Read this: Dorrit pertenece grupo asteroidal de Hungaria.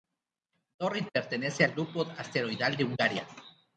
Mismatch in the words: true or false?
true